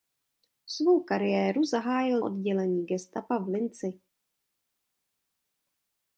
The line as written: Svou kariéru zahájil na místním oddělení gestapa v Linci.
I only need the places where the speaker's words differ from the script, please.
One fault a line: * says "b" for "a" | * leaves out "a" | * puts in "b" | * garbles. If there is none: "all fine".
* leaves out "na místním"